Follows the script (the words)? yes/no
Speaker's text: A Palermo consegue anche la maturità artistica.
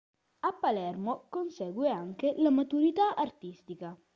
yes